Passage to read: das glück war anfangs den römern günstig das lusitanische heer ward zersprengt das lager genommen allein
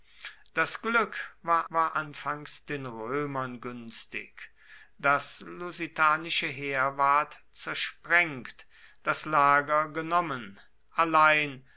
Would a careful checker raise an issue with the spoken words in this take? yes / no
yes